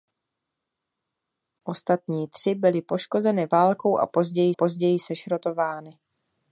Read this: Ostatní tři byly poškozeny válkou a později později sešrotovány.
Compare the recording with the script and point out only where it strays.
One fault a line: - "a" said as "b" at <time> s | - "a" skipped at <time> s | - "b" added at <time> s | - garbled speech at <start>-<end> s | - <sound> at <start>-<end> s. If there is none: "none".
none